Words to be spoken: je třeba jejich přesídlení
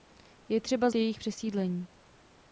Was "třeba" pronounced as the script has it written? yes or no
yes